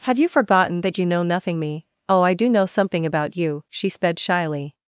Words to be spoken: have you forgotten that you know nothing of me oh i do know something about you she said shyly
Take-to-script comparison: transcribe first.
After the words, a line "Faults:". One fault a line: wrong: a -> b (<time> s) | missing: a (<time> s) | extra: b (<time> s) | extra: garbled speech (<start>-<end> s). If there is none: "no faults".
have you forgotten that you know nothing me oh i do know something about you she sped shyly
Faults:
missing: of (1.6 s)
wrong: said -> sped (3.9 s)